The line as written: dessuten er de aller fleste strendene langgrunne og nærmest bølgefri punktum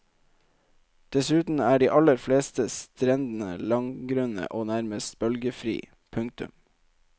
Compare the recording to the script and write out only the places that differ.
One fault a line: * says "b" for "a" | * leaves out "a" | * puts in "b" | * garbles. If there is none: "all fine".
all fine